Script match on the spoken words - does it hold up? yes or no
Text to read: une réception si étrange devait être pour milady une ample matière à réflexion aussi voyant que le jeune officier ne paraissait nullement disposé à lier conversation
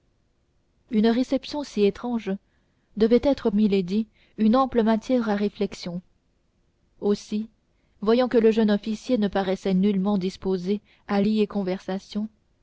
no